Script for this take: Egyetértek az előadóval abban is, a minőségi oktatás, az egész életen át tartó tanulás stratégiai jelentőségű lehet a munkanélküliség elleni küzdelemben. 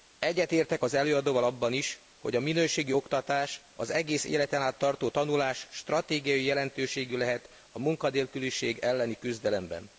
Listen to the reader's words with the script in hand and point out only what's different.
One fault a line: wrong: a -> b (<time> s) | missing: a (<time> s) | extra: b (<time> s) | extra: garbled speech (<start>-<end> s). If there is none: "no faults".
extra: hogy (2.2 s)